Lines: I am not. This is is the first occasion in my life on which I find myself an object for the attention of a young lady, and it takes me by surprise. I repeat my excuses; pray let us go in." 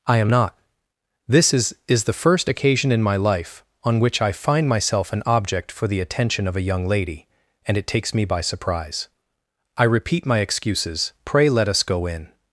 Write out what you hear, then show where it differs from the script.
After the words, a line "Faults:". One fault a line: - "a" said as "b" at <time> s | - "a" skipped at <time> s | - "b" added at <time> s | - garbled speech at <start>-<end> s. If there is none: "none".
I am not. This is is the first occasion in my life on which I find myself an object for the attention of a young lady, and it takes me by surprise. I repeat my excuses; pray let us go in."
Faults:
none